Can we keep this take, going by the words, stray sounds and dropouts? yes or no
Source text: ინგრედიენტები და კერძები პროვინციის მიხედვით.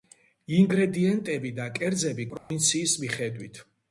no